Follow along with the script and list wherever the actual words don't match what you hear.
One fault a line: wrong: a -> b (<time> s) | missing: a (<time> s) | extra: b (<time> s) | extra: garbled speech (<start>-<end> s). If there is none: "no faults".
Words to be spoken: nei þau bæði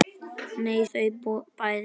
no faults